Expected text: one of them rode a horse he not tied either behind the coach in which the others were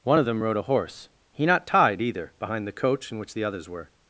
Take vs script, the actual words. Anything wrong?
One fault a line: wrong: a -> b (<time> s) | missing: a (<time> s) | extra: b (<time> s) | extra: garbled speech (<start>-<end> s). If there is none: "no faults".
no faults